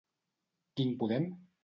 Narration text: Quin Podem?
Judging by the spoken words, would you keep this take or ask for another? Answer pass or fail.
pass